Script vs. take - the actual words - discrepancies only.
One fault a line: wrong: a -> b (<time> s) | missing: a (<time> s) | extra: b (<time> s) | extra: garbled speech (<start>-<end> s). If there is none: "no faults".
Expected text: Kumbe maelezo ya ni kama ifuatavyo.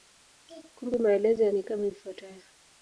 no faults